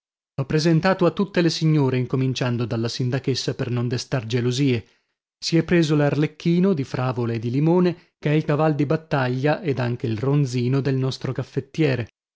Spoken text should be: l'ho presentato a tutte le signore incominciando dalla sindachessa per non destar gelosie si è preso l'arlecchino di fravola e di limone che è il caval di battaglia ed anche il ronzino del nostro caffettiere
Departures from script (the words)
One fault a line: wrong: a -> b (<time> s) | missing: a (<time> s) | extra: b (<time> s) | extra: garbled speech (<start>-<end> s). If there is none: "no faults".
no faults